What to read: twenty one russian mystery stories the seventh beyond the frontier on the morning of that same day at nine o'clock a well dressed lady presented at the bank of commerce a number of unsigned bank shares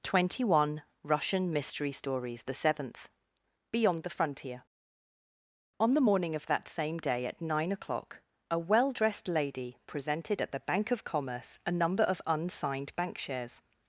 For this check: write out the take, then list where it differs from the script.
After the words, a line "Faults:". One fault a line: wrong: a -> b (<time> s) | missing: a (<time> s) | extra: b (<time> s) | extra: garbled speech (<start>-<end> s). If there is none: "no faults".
twenty one russian mystery stories the seventh beyond the frontier on the morning of that same day at nine o'clock a well dressed lady presented at the bank of commerce a number of unsigned bank shares
Faults:
no faults